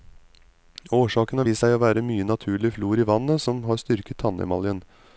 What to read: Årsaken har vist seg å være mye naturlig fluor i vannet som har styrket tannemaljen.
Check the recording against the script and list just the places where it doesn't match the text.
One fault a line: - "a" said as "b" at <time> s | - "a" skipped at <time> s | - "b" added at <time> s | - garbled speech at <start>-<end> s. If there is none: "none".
none